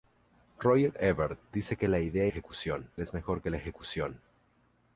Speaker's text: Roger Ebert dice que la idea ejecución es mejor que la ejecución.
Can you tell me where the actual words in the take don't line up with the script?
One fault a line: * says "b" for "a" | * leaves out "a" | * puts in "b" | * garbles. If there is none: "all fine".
all fine